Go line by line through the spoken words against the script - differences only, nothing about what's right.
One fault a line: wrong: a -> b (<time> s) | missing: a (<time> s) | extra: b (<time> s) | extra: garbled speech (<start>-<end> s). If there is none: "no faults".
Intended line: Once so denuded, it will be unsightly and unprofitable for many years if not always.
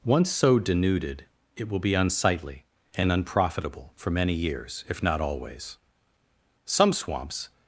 extra: Some swamps (6.6 s)